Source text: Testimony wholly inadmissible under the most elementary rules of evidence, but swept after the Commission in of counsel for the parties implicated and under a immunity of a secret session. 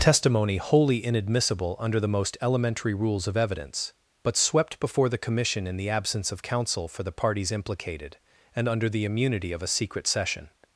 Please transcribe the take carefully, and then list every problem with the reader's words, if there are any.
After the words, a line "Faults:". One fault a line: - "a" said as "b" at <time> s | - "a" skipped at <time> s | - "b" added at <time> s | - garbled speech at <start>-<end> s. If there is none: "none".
Testimony wholly inadmissible under the most elementary rules of evidence, but swept before the Commission in the absence of counsel for the parties implicated and under the immunity of a secret session.
Faults:
- "after" said as "before" at 4.8 s
- "the absence" added at 5.8 s
- "a" said as "the" at 8.9 s